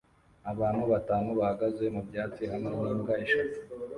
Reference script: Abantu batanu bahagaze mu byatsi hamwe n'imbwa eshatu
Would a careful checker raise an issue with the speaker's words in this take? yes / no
no